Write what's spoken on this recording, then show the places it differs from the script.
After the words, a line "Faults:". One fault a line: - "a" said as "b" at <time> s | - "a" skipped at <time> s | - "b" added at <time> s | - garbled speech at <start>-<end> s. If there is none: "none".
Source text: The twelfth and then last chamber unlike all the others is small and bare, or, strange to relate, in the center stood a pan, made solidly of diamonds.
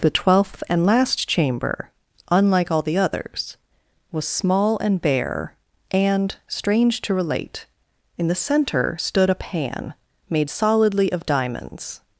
The twelfth and last chamber unlike all the others was small and bare, and, strange to relate, in the center stood a pan, made solidly of diamonds.
Faults:
- "then" skipped at 0.9 s
- "is" said as "was" at 4.1 s
- "or" said as "and" at 5.9 s